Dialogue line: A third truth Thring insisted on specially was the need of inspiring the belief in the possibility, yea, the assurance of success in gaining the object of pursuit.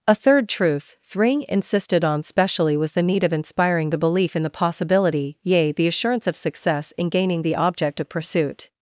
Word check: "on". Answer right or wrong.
right